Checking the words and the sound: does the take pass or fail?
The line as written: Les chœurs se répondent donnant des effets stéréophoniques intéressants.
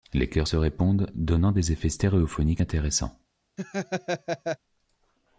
fail